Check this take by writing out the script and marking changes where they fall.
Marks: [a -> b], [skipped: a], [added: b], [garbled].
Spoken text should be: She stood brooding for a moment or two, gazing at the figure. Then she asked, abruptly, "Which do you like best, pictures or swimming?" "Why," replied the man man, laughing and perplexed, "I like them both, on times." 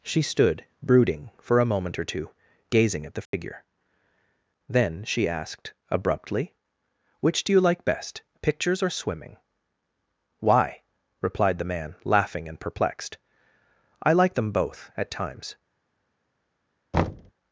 She stood brooding for a moment or two, gazing at the figure. Then she asked, abruptly, "Which do you like best, pictures or swimming?" "Why," replied the man [skipped: man,] laughing and perplexed, "I like them both, [on -> at] times."